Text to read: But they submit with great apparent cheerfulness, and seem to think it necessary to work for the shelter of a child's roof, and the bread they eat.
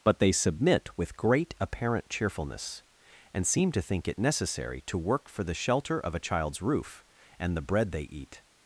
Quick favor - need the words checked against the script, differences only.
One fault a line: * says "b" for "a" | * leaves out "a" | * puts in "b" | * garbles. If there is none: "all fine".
all fine